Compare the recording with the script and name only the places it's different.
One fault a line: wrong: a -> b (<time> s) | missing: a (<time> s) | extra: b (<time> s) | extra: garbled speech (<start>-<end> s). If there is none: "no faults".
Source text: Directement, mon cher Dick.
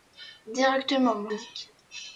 missing: cher (1.3 s)